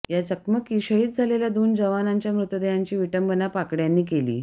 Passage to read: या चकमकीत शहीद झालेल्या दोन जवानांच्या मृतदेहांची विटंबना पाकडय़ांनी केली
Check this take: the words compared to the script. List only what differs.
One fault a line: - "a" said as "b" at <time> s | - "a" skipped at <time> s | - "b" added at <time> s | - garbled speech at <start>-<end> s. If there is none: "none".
none